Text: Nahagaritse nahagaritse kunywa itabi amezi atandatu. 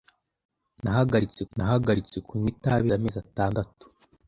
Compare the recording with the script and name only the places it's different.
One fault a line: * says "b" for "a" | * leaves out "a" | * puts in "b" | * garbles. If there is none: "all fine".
all fine